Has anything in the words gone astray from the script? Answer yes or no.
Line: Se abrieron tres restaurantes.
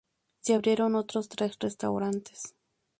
yes